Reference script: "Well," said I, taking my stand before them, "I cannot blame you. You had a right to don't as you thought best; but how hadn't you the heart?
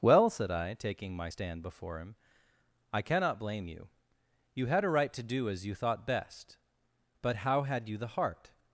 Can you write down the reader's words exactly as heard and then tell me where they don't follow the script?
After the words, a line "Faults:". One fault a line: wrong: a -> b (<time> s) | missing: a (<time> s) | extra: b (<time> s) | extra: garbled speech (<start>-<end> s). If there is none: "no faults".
"Well," said I, taking my stand before him, "I cannot blame you. You had a right to do as you thought best; but how had you the heart?
Faults:
wrong: them -> him (2.0 s)
wrong: don't -> do (5.2 s)
wrong: hadn't -> had (7.6 s)